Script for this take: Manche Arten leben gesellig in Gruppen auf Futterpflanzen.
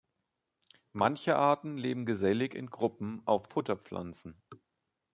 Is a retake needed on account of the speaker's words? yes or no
no